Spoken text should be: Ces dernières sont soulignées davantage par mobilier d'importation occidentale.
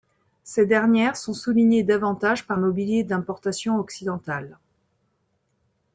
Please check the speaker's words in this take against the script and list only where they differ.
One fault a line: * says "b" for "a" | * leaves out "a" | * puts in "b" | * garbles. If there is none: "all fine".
all fine